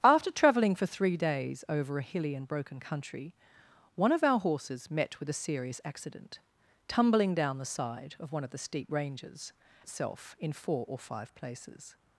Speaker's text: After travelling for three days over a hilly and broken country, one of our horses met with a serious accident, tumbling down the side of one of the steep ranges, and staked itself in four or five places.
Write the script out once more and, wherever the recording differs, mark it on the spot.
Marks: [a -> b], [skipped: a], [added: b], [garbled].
After travelling for three days over a hilly and broken country, one of our horses met with a serious accident, tumbling down the side of one of the steep ranges, [skipped: and staked] itself in four or five places.